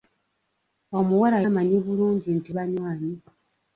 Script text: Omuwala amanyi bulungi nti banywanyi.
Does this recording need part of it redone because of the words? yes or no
no